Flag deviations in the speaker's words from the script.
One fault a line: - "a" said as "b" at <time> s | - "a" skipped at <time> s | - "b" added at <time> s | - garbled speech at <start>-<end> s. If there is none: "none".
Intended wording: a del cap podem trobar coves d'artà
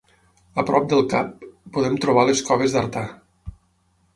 - "prop" added at 0.7 s
- "les" added at 2.3 s